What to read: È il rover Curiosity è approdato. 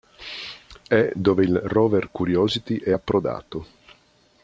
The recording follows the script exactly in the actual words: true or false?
false